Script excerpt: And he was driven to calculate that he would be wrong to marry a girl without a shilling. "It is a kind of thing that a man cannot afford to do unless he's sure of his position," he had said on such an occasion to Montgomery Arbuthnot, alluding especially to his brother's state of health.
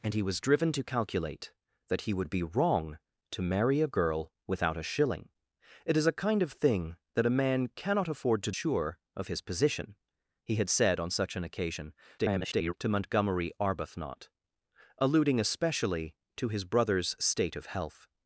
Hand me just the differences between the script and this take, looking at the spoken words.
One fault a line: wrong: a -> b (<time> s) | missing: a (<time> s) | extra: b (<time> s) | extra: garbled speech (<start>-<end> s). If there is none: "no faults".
missing: do unless he's (8.5 s)
extra: garbled speech (12.2-12.7 s)